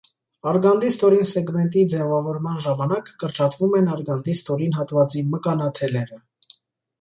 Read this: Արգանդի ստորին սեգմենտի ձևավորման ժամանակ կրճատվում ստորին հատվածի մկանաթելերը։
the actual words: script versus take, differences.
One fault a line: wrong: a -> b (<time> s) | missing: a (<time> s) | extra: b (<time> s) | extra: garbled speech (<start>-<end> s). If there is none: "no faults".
extra: են արգանդի (3.8 s)